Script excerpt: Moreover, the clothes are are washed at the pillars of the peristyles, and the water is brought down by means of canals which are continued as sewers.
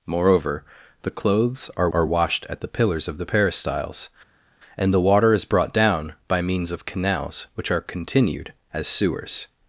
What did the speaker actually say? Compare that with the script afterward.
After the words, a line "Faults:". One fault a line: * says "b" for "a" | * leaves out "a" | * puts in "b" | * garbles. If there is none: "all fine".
Moreover, the clothes are are washed at the pillars of the peristyles, and the water is brought down by means of canals which are continued as sewers.
Faults:
all fine